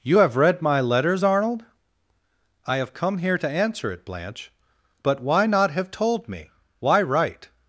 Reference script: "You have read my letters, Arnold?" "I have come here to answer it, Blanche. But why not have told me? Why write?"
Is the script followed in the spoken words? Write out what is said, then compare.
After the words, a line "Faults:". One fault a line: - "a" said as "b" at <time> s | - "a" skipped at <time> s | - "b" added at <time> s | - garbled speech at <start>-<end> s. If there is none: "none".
"You have read my letters, Arnold?" "I have come here to answer it, Blanche. But why not have told me? Why write?"
Faults:
none